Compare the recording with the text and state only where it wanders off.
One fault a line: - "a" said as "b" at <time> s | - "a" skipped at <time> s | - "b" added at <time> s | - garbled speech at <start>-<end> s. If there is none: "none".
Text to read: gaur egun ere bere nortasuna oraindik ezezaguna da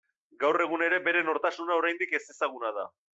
none